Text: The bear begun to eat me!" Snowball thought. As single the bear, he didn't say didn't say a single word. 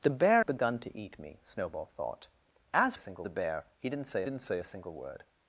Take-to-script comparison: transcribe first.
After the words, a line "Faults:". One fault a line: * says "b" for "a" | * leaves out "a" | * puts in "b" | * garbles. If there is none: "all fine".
The bear begun to eat me!" Snowball thought. As single the bear, he didn't say didn't say a single word.
Faults:
all fine